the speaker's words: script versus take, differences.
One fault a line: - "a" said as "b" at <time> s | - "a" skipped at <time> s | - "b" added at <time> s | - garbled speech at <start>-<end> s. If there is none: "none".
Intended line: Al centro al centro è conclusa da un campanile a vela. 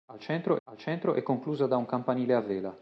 none